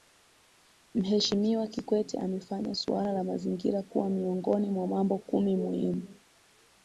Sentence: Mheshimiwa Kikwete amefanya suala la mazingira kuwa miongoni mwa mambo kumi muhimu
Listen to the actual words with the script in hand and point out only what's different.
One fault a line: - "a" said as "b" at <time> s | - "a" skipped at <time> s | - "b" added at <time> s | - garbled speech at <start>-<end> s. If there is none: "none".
none